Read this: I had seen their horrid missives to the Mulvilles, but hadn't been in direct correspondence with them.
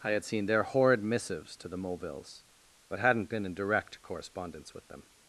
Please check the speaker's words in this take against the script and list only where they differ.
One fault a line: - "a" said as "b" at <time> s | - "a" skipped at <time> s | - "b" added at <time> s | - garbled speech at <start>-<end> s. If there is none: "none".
none